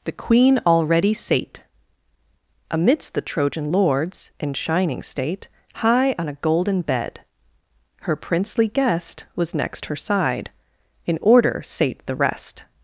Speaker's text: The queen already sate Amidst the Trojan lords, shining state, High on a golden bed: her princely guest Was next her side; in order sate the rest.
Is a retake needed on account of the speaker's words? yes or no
yes